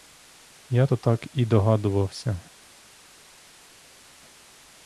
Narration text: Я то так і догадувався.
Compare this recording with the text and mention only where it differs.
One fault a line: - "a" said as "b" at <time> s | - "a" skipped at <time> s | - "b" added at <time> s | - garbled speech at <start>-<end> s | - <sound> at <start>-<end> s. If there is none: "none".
none